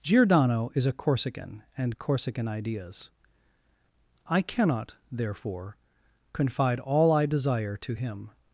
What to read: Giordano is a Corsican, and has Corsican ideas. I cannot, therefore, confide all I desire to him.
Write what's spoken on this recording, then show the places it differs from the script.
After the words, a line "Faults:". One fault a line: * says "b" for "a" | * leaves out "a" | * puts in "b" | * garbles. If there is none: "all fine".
Giordano is a Corsican, and Corsican ideas. I cannot, therefore, confide all I desire to him.
Faults:
* leaves out "has"